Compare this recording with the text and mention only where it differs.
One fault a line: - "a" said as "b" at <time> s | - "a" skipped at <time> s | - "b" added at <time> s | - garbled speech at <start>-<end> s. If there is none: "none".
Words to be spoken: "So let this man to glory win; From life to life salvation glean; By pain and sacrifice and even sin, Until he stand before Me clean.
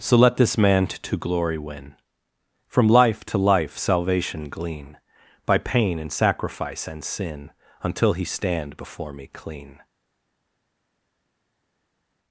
- "even" skipped at 7.0 s